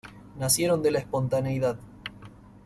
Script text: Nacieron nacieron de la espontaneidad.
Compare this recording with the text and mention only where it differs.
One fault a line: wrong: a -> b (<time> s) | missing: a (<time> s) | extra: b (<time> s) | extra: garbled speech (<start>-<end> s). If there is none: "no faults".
missing: nacieron (0.8 s)